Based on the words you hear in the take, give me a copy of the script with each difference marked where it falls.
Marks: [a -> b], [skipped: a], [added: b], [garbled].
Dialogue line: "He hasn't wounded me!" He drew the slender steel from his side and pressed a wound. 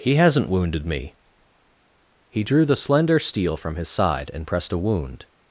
"He hasn't wounded me!" He drew the slender steel from his side and pressed a wound.